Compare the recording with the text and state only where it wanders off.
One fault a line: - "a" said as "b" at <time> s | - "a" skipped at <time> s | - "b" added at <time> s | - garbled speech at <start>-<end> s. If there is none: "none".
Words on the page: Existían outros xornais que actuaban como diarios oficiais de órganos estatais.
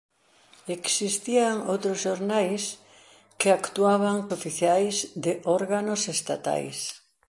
- "como diarios" skipped at 4.2 s